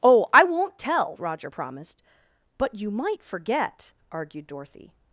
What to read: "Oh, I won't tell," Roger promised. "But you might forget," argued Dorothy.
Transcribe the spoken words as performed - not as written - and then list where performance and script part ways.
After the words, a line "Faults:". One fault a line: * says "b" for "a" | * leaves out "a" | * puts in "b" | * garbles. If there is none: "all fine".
"Oh, I won't tell," Roger promised. "But you might forget," argued Dorothy.
Faults:
all fine